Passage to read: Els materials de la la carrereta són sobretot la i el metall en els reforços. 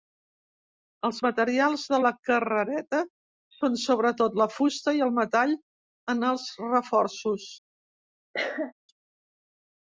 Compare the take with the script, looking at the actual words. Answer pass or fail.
fail